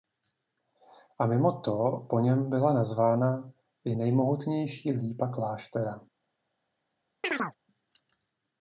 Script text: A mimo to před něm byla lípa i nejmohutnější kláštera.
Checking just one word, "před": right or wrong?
wrong